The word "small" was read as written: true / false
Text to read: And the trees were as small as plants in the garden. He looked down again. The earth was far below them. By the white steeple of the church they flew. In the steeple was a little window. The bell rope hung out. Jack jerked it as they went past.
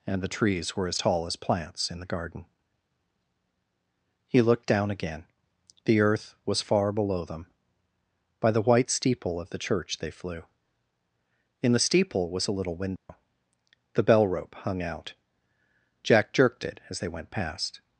false